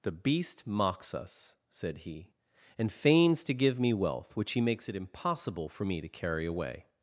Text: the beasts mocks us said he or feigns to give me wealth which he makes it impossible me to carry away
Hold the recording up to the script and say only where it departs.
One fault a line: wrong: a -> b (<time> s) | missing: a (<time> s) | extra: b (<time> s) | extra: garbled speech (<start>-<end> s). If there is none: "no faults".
wrong: beasts -> beast (0.1 s)
wrong: or -> and (2.8 s)
extra: for (5.7 s)